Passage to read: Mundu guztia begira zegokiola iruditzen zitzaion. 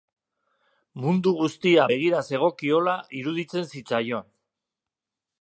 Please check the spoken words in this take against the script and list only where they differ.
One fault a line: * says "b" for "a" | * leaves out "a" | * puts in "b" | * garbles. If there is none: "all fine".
all fine